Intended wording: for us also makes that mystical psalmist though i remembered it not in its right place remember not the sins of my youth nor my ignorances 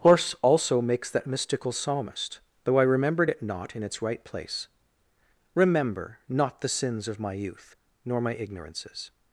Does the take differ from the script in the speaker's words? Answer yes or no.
yes